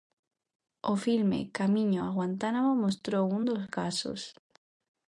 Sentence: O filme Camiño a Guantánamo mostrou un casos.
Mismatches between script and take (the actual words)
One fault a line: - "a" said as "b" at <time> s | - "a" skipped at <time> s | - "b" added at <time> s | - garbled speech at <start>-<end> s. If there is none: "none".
- "dos" added at 3.5 s